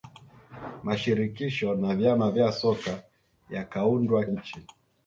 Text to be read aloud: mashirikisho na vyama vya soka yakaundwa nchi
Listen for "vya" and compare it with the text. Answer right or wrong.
right